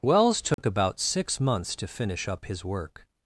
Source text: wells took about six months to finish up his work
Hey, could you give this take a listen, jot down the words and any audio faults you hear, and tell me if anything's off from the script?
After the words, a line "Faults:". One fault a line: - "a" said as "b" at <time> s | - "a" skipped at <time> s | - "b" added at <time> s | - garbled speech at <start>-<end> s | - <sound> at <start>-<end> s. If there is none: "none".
wells took about six months to finish up his work
Faults:
- dropout at 0.5-0.6 s